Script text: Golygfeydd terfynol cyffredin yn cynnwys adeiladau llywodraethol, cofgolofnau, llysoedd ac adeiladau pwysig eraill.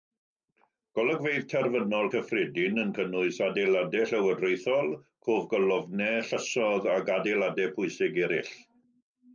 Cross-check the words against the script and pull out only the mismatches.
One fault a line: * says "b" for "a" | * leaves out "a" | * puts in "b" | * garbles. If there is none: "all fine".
all fine